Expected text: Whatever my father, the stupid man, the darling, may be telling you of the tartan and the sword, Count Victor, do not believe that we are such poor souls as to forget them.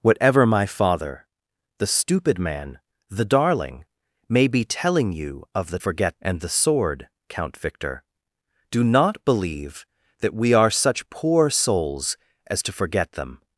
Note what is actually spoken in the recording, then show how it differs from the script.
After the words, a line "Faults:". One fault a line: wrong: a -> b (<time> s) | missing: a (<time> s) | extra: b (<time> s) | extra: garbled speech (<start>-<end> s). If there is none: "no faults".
Whatever my father, the stupid man, the darling, may be telling you of the forget and the sword, Count Victor, do not believe that we are such poor souls as to forget them.
Faults:
wrong: tartan -> forget (5.8 s)